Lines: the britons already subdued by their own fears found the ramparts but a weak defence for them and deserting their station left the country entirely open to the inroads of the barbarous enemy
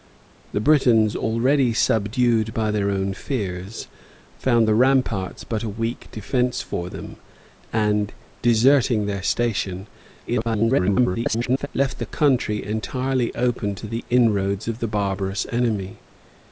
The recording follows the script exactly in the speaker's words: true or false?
false